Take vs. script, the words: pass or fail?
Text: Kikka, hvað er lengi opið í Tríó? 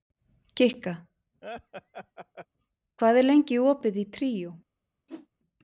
pass